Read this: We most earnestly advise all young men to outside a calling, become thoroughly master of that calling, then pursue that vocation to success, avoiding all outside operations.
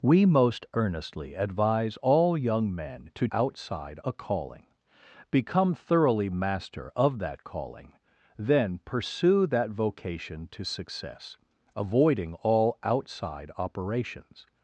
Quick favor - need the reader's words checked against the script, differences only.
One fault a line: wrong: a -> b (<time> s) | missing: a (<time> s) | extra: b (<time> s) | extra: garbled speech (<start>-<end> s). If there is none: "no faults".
no faults